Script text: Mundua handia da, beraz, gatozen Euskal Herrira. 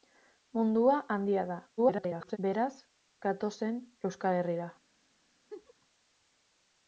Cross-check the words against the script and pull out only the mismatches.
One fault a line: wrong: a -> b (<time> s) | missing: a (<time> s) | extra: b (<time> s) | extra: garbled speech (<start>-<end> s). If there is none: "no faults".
extra: garbled speech (1.8-2.4 s)